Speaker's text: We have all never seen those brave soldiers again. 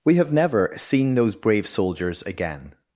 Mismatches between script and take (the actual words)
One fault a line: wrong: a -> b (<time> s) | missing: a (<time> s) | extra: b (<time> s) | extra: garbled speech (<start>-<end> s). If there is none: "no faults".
missing: all (0.3 s)